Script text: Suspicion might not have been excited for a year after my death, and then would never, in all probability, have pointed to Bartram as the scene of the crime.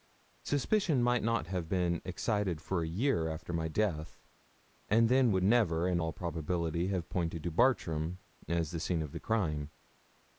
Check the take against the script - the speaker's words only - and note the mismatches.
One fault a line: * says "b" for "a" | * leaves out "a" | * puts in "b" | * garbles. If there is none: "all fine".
all fine